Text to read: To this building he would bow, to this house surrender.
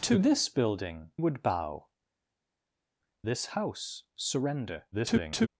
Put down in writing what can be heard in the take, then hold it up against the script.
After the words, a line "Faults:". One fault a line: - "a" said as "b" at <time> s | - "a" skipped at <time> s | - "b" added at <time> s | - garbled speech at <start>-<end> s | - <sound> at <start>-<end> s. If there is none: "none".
To this building would bow, this house surrender. [garbled]
Faults:
- "he" skipped at 1.1 s
- "to" skipped at 1.9 s
- garbled speech at 4.9-5.5 s